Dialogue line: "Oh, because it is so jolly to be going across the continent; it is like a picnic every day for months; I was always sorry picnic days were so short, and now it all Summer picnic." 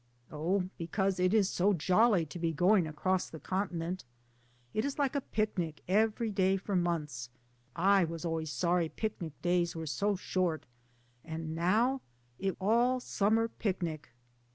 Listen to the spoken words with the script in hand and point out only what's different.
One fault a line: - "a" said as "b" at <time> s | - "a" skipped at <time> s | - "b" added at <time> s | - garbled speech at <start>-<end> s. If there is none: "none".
none